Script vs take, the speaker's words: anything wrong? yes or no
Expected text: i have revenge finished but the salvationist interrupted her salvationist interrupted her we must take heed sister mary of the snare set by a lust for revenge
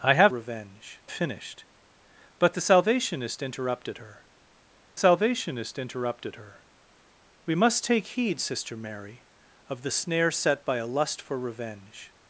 no